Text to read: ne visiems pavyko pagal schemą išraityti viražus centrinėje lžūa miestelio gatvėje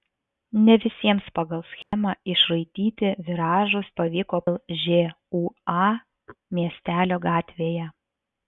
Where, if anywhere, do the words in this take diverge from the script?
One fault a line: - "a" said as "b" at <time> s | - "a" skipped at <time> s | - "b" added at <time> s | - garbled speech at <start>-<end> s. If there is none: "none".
- "pavyko" skipped at 1.2 s
- "centrinėje" said as "pavyko" at 4.0 s